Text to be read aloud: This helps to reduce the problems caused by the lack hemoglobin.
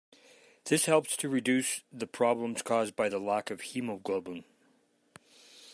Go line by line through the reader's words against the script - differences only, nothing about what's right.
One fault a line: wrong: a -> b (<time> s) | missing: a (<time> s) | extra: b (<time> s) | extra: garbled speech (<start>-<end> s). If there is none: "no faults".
extra: of (3.5 s)